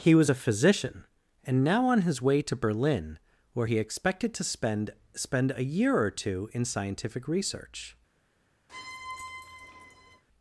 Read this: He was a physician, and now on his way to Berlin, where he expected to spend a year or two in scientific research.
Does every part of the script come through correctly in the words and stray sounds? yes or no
no